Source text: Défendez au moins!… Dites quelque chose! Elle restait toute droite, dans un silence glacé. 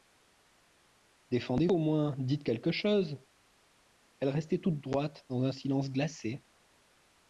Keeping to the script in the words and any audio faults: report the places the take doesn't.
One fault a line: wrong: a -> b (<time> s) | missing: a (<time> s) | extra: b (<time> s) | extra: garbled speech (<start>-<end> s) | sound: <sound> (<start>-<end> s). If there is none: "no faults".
no faults